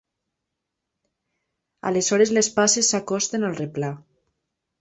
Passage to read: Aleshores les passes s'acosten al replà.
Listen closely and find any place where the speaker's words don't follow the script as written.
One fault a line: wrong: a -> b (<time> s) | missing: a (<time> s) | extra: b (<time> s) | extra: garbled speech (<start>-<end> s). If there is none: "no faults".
no faults